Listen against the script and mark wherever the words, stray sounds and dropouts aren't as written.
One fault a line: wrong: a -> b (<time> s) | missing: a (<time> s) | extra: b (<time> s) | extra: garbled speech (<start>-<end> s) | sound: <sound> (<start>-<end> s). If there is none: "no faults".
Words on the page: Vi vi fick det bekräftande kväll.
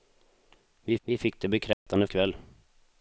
sound: dropout (1.7-1.9 s)